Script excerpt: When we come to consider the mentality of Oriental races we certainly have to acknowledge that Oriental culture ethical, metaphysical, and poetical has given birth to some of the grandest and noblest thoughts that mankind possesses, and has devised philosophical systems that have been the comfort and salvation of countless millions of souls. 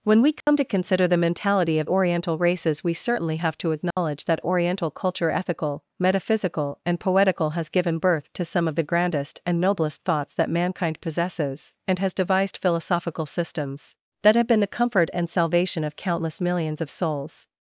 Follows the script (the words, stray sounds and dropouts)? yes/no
no